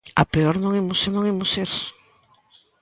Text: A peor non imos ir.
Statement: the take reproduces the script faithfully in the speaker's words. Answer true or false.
false